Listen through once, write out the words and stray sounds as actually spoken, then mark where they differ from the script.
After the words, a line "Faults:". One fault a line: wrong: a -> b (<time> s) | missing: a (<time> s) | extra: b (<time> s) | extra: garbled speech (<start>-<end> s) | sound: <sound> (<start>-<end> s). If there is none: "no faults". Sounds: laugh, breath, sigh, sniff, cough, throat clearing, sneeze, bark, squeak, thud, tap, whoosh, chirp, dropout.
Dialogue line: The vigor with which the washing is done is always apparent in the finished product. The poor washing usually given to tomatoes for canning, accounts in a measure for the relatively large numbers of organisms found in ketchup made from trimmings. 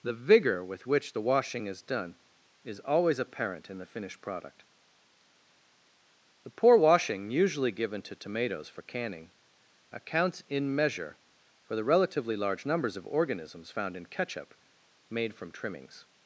The vigor with which the washing is done is always apparent in the finished product. The poor washing usually given to tomatoes for canning, accounts in measure for the relatively large numbers of organisms found in ketchup made from trimmings.
Faults:
missing: a (10.7 s)